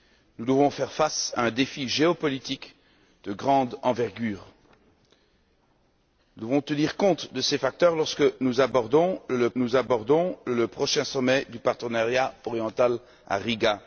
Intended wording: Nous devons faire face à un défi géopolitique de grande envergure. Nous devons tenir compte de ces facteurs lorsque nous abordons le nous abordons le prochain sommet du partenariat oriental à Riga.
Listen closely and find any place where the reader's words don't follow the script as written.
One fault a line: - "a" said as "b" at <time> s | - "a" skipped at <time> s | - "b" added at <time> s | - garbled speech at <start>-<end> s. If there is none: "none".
none